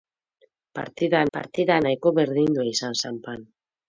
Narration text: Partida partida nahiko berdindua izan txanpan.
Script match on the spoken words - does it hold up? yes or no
yes